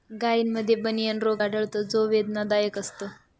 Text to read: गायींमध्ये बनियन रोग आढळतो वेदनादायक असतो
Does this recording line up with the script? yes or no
no